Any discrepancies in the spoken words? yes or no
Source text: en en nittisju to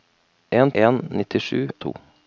no